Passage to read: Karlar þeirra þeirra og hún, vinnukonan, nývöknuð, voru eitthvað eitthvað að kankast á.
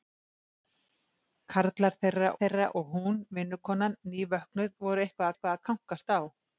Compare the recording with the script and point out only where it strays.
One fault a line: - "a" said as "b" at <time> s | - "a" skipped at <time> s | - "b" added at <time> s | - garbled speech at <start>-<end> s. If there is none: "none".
none